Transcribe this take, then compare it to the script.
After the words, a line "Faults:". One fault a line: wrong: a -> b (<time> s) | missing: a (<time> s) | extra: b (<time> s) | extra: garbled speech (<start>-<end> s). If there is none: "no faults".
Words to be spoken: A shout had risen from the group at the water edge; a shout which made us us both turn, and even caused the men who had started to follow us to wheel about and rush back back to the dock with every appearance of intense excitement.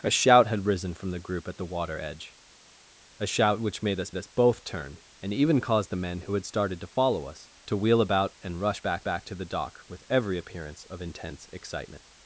A shout had risen from the group at the water edge; a shout which made us us both turn, and even caused the men who had started to follow us to wheel about and rush back back to the dock with every appearance of intense excitement.
Faults:
no faults